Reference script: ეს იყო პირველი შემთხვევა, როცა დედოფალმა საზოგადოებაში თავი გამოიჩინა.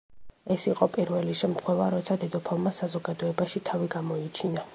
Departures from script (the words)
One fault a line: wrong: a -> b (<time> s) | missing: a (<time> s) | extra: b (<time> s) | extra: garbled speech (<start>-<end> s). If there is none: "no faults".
no faults